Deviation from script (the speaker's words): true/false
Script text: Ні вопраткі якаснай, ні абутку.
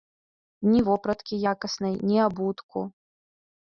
false